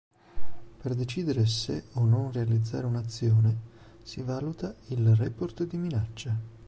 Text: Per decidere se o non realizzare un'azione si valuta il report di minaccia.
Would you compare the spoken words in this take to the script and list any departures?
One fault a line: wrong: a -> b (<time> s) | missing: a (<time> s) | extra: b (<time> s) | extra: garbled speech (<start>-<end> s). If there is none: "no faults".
no faults